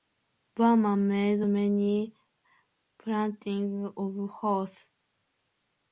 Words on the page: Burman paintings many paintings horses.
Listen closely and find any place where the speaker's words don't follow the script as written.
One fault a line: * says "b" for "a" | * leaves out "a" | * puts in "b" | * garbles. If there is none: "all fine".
* says "made" for "paintings"
* puts in "of"